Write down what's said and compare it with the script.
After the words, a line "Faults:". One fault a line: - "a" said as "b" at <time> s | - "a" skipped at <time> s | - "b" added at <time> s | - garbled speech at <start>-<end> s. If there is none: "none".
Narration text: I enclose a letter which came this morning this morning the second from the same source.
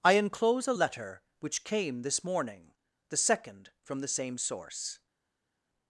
I enclose a letter which came this morning the second from the same source.
Faults:
- "this morning" skipped at 2.7 s